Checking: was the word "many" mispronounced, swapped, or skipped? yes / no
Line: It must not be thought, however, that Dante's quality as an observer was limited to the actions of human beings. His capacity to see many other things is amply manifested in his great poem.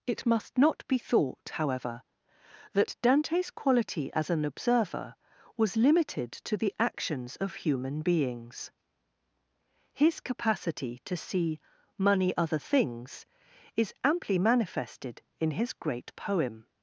yes